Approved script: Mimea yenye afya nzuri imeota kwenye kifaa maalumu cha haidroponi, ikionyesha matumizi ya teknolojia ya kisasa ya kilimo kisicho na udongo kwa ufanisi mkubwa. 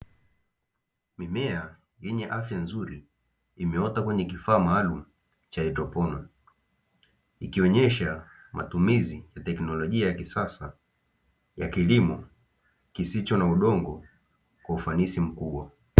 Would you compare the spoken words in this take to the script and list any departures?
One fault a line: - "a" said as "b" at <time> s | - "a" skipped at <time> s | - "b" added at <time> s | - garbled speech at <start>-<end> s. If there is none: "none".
none